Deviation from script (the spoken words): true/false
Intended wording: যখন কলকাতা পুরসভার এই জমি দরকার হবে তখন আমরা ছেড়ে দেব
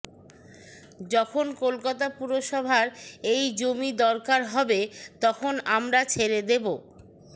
false